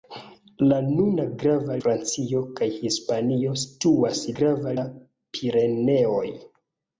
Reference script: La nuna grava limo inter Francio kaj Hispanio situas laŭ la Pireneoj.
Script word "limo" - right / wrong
wrong